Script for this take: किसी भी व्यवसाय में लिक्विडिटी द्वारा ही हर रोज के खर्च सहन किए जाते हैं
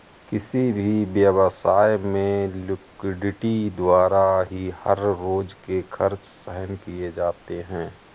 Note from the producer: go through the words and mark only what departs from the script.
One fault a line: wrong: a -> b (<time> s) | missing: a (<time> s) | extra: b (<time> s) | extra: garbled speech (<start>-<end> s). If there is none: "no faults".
no faults